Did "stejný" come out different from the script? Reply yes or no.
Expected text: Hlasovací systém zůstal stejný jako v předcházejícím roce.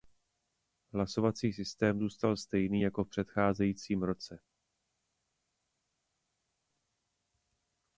no